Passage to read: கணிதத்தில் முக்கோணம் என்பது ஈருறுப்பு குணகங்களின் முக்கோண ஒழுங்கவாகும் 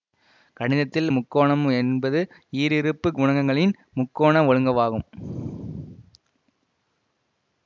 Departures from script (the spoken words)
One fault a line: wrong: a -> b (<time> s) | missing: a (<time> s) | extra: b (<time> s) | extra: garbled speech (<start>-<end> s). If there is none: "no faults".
no faults